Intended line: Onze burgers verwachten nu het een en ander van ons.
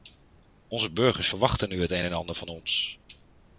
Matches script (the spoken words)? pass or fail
pass